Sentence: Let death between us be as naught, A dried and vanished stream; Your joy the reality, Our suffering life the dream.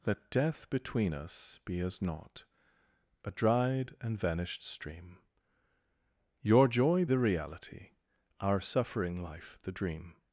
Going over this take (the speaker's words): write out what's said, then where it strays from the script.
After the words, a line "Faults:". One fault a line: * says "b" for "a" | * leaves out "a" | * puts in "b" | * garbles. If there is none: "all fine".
Let death between us be as naught, A dried and vanished stream; Your joy the reality, Our suffering life the dream.
Faults:
all fine